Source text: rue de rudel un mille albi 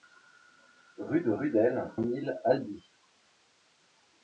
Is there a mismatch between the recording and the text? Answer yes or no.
no